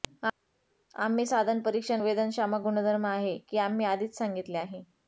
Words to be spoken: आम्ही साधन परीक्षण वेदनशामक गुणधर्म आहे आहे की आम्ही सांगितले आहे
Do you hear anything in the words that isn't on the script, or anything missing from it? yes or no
yes